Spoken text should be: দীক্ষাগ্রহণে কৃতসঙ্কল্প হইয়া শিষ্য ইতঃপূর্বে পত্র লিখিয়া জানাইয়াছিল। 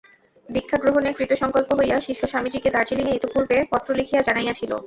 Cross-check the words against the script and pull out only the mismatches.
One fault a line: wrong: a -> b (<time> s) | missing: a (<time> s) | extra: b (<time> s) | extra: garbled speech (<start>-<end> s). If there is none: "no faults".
extra: স্বামীজীকে দার্জিলিঙে (2.3 s)